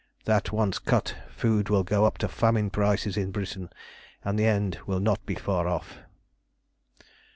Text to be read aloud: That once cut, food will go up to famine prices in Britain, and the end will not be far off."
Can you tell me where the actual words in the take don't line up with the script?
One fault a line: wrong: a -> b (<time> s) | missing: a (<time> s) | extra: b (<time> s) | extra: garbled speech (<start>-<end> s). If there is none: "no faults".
no faults